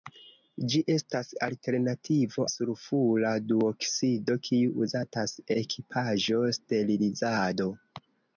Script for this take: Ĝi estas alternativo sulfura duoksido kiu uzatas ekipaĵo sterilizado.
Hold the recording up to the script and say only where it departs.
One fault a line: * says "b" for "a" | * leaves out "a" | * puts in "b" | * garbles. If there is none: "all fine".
all fine